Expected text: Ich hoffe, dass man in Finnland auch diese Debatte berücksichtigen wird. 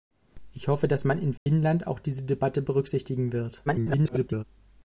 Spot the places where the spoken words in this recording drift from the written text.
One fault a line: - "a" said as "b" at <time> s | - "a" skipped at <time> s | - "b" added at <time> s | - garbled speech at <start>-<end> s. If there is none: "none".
- garbled speech at 3.7-4.4 s